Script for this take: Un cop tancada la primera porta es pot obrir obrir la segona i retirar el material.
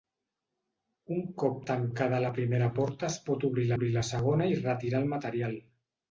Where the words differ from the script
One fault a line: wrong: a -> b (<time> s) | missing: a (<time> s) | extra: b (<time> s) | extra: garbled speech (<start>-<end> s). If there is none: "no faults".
no faults